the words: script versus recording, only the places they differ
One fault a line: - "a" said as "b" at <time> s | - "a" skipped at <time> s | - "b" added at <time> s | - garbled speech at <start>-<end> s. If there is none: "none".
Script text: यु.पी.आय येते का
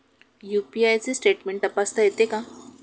- "चे स्टेटमेंट तपासता" added at 1.0 s